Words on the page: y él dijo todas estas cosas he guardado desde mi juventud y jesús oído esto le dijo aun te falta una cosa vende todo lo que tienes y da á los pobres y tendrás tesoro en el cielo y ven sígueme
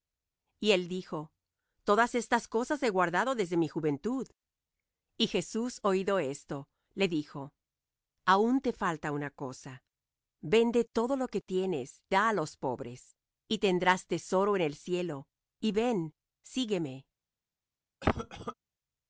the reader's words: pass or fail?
fail